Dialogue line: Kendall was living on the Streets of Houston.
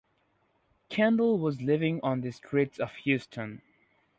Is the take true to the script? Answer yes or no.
yes